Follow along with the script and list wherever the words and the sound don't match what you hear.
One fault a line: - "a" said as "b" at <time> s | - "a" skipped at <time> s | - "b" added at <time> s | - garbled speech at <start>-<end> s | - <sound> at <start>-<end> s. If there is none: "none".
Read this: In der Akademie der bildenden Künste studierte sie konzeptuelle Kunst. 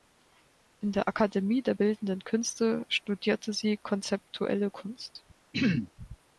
- throat clearing at 5.5-5.9 s